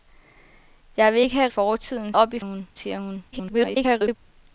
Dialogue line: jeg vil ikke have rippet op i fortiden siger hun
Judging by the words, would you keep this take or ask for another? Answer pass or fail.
fail